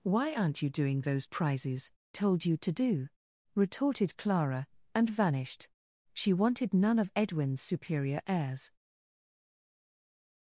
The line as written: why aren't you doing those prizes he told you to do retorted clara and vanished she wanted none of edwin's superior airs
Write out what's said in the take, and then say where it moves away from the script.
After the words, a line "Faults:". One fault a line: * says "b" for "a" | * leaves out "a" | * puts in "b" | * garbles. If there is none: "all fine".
why aren't you doing those prizes told you to do retorted clara and vanished she wanted none of edwin's superior airs
Faults:
* leaves out "he"